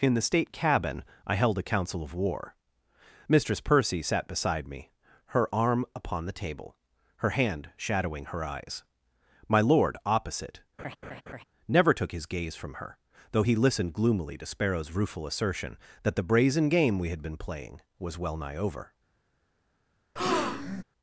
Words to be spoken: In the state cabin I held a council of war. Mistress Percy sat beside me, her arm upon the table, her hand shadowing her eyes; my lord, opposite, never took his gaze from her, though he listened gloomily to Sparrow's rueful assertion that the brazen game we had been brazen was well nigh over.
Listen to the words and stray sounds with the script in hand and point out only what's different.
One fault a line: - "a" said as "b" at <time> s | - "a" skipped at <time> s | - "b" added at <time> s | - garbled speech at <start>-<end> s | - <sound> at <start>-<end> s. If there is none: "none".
- laugh at 10.8-11.4 s
- "brazen" said as "playing" at 17.4 s
- breath at 20.2-20.8 s